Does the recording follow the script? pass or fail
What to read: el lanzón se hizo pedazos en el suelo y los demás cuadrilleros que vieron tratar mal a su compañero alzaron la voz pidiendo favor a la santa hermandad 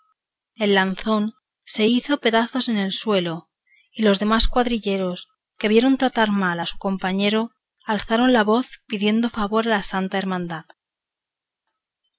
pass